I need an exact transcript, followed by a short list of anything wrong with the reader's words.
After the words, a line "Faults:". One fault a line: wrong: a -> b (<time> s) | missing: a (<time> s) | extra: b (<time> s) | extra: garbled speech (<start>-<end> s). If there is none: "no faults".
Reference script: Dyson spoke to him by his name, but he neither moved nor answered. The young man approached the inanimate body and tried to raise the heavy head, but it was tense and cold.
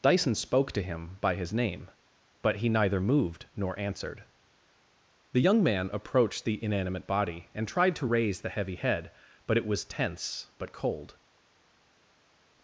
Dyson spoke to him by his name, but he neither moved nor answered. The young man approached the inanimate body and tried to raise the heavy head, but it was tense but cold.
Faults:
wrong: and -> but (10.6 s)